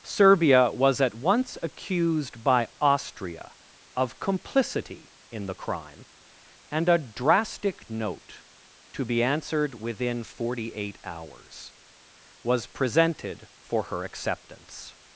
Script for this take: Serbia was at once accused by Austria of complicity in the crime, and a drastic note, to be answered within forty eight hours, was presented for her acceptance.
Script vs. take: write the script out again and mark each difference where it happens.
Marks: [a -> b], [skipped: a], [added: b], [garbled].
Serbia was at once accused by Austria of complicity in the crime, and a drastic note, to be answered within forty eight hours, was presented for her acceptance.